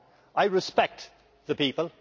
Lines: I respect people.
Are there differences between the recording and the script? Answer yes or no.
yes